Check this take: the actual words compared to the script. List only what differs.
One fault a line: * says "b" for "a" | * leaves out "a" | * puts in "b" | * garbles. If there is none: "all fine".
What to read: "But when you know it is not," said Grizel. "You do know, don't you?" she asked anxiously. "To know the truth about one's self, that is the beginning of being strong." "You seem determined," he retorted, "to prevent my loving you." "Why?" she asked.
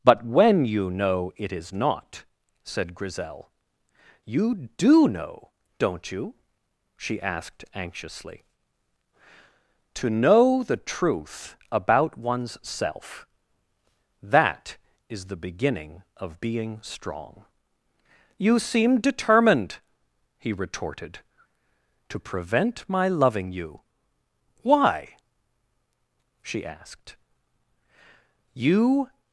* puts in "You"